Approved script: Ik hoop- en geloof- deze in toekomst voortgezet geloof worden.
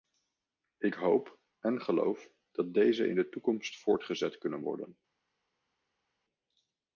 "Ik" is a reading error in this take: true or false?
false